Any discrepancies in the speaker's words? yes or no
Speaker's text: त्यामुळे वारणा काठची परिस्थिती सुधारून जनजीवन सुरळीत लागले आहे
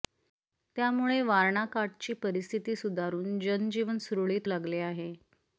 no